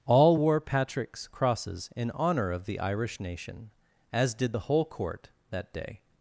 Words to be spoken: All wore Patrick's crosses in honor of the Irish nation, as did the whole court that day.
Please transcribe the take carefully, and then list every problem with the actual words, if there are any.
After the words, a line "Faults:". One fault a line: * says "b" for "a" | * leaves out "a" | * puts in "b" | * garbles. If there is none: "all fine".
All wore Patrick's crosses in honor of the Irish nation, as did the whole court that day.
Faults:
all fine